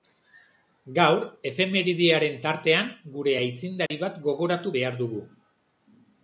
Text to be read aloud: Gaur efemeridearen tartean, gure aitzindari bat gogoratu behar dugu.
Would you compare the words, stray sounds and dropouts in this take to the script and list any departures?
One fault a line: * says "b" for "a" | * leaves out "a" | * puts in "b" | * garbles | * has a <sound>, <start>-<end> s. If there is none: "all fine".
* has a dropout, 3.9-3.9 s